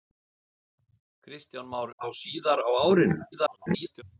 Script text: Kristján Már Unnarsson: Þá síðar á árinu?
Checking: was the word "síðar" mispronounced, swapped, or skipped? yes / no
no